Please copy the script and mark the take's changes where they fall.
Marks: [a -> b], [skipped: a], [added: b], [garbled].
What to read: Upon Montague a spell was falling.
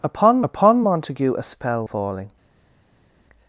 Upon [added: upon] Montague a spell [skipped: was] falling.